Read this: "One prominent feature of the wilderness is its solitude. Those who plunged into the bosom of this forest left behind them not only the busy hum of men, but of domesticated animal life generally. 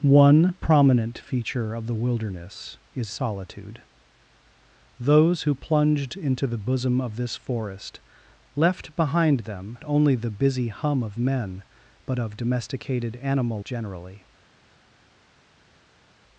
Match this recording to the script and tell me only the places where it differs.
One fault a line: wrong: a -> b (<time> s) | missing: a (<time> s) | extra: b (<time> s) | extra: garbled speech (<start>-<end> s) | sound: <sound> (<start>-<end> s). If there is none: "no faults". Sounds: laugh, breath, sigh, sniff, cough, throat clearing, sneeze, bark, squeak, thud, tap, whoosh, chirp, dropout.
missing: its (3.1 s)
missing: not (9.8 s)
missing: life (13.6 s)